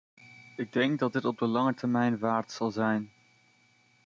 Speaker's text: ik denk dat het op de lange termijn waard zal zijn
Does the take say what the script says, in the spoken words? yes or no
yes